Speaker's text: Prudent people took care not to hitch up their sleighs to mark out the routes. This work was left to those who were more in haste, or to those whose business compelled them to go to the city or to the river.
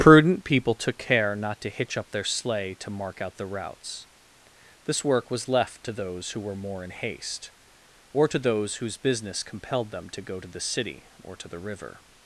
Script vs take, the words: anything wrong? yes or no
yes